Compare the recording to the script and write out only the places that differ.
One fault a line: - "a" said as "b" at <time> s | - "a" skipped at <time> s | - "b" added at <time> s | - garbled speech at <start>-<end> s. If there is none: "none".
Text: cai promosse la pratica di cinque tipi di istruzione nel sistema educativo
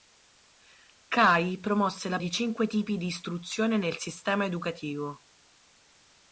- "pratica" skipped at 2.2 s